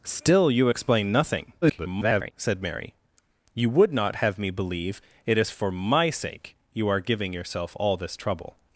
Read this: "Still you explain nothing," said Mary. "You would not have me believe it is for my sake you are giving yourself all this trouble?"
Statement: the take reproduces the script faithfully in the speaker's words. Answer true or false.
false